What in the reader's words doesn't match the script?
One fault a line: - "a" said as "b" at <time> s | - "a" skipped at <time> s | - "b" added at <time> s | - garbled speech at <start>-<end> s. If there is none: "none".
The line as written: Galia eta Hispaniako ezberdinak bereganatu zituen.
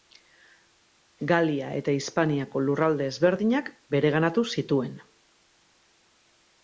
- "lurralde" added at 2.7 s